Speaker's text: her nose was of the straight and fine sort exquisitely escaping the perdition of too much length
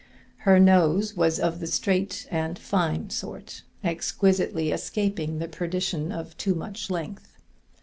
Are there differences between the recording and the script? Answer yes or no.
no